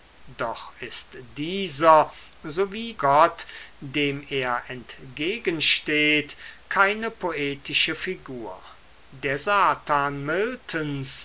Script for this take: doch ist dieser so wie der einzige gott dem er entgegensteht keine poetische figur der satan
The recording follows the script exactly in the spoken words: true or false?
false